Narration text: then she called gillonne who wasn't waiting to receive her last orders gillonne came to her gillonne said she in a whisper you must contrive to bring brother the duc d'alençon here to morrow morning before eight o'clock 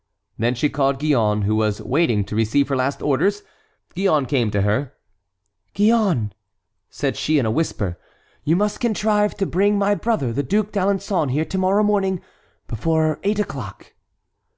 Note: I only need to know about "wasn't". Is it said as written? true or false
false